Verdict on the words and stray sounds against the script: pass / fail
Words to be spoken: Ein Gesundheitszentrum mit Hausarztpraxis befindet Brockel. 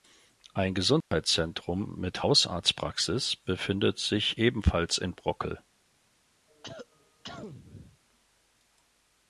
fail